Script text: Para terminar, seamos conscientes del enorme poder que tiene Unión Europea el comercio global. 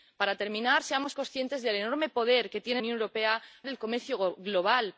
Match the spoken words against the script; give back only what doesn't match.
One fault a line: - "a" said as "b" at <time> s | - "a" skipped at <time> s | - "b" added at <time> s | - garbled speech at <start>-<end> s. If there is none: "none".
none